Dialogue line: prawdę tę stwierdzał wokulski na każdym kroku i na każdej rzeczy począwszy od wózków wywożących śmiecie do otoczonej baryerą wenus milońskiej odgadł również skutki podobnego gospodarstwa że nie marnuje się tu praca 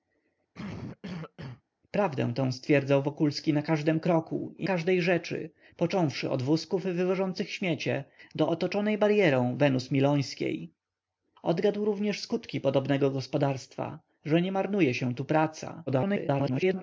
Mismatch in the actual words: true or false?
true